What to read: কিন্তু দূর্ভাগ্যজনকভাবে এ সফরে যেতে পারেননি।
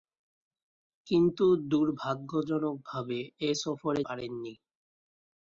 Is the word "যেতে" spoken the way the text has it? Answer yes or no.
no